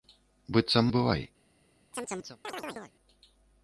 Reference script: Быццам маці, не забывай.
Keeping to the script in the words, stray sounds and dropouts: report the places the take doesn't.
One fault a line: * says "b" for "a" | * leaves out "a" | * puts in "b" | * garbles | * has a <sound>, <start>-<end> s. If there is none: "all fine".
* leaves out "маці не"
* has a chirp, 1.9-2.9 s